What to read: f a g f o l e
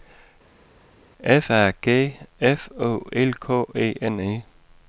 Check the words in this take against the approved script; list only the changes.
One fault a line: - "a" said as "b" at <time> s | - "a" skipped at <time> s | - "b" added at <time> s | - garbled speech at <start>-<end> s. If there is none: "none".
- "k e n" added at 3.4 s